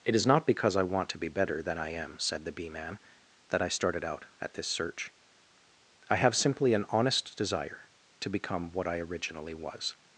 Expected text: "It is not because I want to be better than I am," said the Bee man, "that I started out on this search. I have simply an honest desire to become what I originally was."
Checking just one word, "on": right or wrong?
wrong